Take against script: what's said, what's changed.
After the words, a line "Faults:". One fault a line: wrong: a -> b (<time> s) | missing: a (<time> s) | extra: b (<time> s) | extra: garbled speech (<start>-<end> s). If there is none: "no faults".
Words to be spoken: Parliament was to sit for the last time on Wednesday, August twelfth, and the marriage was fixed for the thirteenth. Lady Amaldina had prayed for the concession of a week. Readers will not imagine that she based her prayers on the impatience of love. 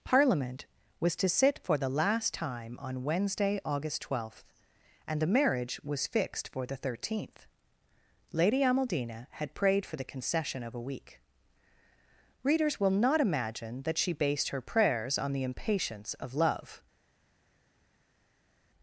Parliament was to sit for the last time on Wednesday, August twelfth, and the marriage was fixed for the thirteenth. Lady Amaldina had prayed for the concession of a week. Readers will not imagine that she based her prayers on the impatience of love.
Faults:
no faults